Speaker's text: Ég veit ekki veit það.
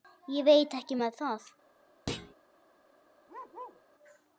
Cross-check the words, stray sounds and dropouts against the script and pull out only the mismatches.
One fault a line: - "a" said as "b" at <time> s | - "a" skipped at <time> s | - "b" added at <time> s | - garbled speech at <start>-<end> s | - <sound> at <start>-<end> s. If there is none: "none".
- "veit" said as "með" at 1.0 s
- thud at 2.1-2.3 s
- bark at 3.3-3.8 s